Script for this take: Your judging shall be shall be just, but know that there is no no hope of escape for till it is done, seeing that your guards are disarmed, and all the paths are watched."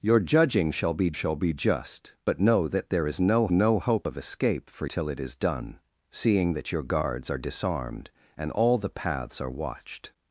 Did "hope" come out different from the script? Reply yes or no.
no